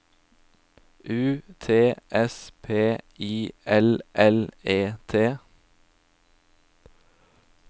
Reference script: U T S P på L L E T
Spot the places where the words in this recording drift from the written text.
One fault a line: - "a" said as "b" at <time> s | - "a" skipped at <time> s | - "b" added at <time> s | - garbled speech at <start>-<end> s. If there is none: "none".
- "på" said as "I" at 3.2 s